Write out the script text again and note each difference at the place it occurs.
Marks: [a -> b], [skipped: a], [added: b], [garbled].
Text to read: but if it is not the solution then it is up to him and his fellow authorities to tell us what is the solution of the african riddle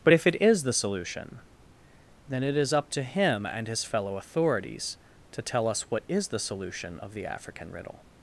but if it is [skipped: not] the solution then it is up to him and his fellow authorities to tell us what is the solution of the african riddle